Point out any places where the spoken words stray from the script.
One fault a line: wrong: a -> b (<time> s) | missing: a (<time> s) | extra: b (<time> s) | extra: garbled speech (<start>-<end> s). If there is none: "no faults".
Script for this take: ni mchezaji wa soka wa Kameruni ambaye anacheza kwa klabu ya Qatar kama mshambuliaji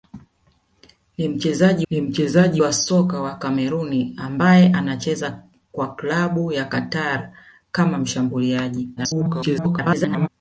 extra: ni mchezaji (1.9 s)
extra: garbled speech (9.0-10.3 s)